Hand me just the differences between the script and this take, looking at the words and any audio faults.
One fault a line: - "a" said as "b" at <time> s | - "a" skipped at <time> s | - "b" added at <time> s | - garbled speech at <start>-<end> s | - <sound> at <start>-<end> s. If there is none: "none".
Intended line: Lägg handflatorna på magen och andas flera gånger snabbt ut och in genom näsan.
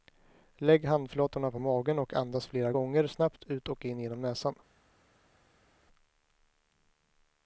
none